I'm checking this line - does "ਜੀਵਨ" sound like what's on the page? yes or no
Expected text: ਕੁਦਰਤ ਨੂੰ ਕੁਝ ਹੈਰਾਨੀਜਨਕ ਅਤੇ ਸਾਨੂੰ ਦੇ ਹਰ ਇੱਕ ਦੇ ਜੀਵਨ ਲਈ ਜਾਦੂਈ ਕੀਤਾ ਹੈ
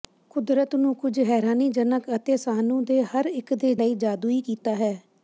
no